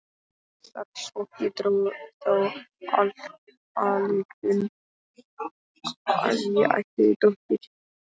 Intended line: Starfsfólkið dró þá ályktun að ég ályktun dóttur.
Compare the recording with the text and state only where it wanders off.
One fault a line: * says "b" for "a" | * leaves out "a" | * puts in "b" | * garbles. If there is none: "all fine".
* says "ætti" for "ályktun"